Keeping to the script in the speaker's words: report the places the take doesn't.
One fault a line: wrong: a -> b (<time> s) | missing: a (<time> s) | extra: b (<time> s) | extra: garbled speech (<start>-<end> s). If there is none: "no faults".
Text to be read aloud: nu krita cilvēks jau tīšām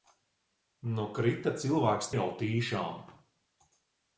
no faults